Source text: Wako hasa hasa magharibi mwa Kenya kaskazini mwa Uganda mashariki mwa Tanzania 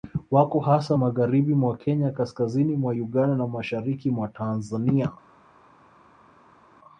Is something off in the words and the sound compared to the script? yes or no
yes